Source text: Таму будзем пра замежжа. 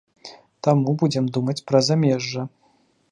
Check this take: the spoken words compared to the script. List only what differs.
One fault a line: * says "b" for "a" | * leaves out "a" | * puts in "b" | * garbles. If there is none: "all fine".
* puts in "думаць"